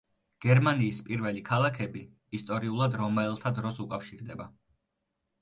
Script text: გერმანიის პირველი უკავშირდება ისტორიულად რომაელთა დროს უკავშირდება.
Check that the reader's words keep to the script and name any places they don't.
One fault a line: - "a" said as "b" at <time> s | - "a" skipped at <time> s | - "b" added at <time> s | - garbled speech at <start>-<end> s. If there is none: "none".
- "უკავშირდება" said as "ქალაქები" at 1.5 s